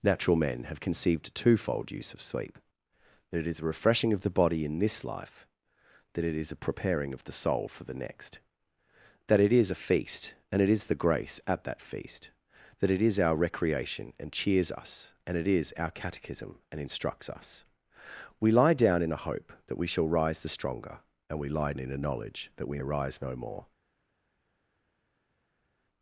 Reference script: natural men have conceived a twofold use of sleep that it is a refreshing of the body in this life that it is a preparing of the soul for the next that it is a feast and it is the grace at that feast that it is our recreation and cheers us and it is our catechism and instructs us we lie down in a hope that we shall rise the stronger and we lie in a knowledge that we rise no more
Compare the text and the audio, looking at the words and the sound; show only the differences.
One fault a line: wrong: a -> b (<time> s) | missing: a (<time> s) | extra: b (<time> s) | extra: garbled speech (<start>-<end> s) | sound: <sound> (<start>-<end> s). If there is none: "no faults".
no faults